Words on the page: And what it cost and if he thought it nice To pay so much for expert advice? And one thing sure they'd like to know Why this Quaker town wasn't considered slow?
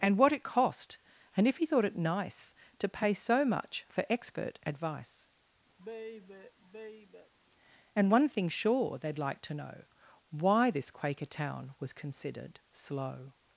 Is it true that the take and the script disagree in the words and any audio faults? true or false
true